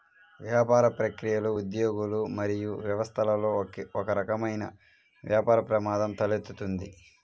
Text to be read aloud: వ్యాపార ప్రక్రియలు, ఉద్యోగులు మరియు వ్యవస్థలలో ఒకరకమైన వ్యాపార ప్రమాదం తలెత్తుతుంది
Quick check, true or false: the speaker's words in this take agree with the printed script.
true